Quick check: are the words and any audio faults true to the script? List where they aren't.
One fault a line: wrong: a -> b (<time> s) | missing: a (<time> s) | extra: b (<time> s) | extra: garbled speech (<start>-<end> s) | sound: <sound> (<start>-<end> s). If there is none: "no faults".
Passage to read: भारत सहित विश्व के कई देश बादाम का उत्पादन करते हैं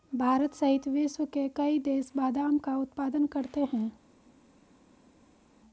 no faults